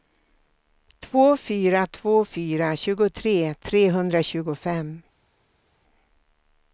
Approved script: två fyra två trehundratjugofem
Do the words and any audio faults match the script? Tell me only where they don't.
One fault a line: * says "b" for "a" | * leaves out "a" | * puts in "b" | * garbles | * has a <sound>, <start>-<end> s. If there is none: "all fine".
* puts in "fyra tjugotre"